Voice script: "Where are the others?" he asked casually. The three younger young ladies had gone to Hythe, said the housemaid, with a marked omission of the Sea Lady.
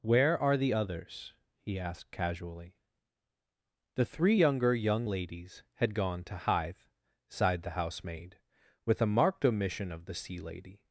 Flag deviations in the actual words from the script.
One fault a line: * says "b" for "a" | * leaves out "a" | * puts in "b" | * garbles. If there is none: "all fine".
* says "sighed" for "said"